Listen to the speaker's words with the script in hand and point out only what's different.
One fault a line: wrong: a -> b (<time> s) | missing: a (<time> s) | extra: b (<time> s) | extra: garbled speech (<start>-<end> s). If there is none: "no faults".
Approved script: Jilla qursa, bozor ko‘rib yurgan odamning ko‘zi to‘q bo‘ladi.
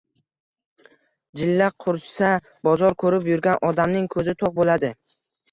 no faults